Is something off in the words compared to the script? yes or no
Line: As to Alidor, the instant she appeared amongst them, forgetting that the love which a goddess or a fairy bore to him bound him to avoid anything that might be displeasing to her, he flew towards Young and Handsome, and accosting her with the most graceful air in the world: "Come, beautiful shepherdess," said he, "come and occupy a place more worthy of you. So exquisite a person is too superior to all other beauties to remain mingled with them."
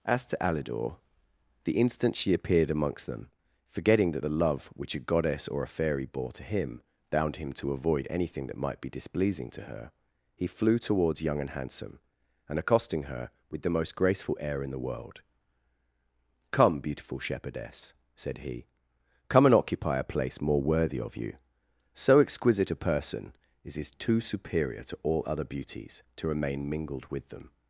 yes